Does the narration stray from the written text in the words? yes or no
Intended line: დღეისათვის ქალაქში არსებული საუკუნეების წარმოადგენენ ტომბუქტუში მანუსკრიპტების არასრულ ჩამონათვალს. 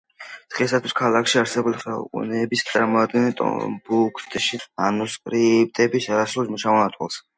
no